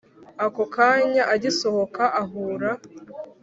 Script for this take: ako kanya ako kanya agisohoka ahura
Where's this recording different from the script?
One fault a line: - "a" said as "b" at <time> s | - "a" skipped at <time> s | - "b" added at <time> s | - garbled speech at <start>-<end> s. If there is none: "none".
- "ako kanya" skipped at 1.2 s